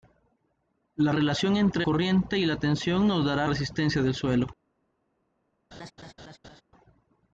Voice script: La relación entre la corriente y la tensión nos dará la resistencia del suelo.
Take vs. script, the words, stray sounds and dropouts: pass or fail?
fail